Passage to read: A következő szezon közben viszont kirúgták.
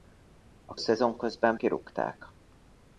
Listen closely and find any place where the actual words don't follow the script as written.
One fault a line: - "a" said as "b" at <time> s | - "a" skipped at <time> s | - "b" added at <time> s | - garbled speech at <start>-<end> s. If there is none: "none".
- "következő" skipped at 0.8 s
- "viszont" skipped at 1.6 s